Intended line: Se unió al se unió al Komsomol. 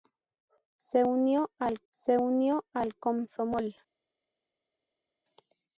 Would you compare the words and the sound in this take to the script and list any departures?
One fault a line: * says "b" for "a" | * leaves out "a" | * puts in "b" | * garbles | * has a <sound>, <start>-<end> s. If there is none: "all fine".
all fine